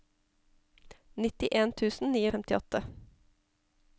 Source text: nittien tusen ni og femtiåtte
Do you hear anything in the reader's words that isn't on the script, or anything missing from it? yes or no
no